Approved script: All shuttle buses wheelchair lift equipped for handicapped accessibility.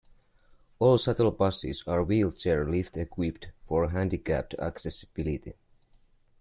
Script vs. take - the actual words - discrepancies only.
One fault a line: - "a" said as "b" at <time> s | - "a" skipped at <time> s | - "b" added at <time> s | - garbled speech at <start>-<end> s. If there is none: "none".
- "are" added at 1.9 s